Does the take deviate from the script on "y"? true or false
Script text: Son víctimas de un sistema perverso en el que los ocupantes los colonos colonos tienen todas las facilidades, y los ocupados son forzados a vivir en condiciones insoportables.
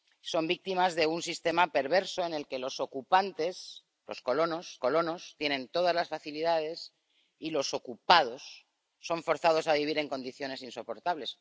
false